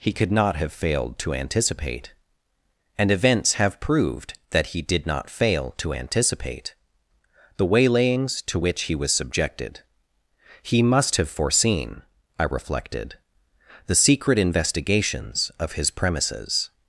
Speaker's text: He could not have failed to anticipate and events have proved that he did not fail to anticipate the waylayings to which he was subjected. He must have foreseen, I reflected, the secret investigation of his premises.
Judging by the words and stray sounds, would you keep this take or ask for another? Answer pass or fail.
fail